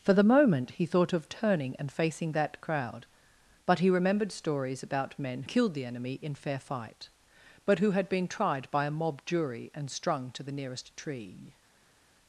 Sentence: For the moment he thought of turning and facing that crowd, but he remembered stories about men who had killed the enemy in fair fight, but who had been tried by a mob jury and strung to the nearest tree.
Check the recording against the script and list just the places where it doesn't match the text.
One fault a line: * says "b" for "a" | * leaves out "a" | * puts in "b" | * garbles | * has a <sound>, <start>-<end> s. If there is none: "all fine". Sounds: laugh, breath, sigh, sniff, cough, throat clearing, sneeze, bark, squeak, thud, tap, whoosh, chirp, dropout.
* leaves out "who had"